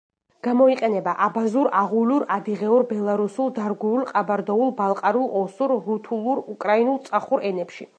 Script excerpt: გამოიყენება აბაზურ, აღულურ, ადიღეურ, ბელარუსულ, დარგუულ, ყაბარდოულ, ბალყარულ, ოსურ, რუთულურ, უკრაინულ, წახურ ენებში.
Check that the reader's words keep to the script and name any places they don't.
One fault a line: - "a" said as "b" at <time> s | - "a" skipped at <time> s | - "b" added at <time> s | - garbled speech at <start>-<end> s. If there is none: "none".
none